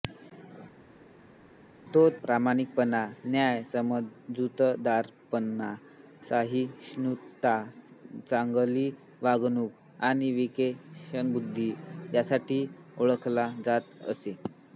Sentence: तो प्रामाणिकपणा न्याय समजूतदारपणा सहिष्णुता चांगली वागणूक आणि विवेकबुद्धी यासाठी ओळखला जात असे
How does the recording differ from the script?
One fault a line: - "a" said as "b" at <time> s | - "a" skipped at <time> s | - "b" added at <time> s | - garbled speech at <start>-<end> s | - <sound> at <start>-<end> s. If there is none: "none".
none